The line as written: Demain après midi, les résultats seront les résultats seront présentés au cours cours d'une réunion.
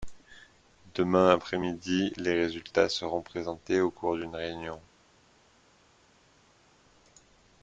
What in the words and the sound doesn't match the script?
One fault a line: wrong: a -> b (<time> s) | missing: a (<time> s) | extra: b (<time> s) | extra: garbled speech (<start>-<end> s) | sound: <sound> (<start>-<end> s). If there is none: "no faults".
missing: les résultats seront (3.2 s)
missing: cours (4.2 s)